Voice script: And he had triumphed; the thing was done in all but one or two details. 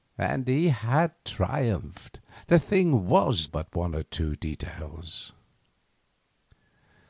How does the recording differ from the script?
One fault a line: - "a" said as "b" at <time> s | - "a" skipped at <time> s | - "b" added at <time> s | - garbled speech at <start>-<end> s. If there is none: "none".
- "done in all" skipped at 3.5 s